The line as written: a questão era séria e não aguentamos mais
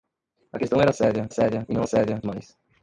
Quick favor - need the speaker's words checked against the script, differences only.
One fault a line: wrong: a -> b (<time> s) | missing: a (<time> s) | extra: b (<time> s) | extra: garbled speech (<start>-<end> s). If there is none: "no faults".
extra: séria (1.3 s)
wrong: aguentamos -> séria (1.8 s)